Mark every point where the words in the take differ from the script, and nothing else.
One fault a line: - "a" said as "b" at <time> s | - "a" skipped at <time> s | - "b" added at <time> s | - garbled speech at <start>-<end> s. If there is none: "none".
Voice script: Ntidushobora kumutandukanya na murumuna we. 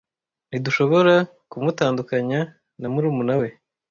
none